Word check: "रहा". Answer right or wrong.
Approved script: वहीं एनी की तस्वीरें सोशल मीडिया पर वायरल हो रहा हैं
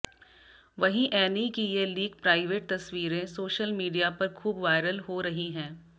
wrong